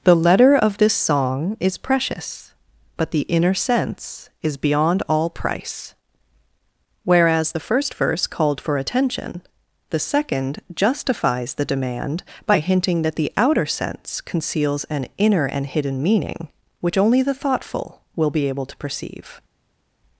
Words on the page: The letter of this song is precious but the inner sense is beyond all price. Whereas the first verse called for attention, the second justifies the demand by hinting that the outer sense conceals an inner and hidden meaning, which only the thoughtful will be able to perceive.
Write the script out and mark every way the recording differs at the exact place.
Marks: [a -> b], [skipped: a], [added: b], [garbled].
The letter of this song is precious but the inner sense is beyond all price. Whereas the first verse called for attention, the second justifies the demand by hinting that the outer sense conceals an inner and hidden meaning, which only the thoughtful will be able to perceive.